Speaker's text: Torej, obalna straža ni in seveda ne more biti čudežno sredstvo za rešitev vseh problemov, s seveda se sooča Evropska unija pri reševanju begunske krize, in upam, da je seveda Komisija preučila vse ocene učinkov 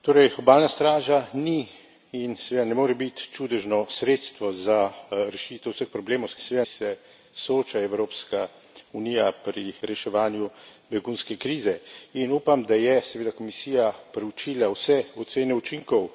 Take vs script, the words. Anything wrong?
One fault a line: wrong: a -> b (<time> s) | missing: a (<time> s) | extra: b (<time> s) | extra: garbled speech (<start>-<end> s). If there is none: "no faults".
no faults